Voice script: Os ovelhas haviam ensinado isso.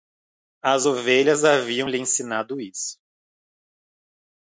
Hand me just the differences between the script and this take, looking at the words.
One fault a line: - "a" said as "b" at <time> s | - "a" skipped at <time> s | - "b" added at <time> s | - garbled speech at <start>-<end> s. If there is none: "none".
- "Os" said as "As" at 0.6 s
- "lhe" added at 1.9 s